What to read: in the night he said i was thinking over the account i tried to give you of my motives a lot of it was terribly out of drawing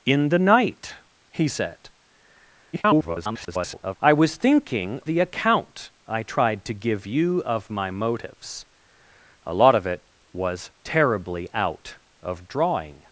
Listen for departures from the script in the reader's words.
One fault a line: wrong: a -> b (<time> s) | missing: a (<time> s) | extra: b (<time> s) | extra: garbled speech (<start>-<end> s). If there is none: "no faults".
extra: garbled speech (2.7-4.0 s)
missing: over (5.0 s)